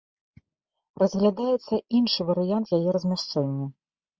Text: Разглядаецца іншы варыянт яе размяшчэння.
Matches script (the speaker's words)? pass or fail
pass